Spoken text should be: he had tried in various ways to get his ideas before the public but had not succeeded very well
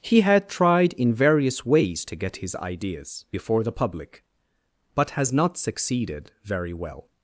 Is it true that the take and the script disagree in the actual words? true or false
true